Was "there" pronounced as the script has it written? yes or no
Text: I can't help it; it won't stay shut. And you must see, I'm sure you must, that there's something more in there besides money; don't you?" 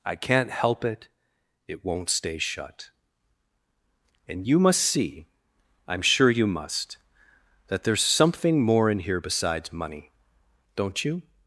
no